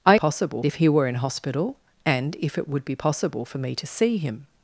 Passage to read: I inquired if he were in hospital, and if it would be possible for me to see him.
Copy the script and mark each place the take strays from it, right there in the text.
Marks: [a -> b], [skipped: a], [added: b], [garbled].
I [inquired -> possible] if he were in hospital, and if it would be possible for me to see him.